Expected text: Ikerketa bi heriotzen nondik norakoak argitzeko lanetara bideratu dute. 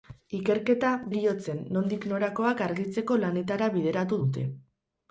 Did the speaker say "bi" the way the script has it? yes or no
no